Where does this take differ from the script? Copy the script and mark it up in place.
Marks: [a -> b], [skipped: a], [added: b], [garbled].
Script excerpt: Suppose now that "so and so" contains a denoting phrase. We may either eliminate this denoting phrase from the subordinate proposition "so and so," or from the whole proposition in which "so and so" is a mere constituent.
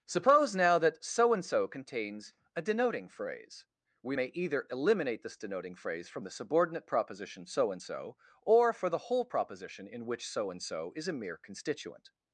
Suppose now that "so and so" contains a denoting phrase. We may either eliminate this denoting phrase from the subordinate proposition "so and so," or [from -> for] the whole proposition in which "so and so" is a mere constituent.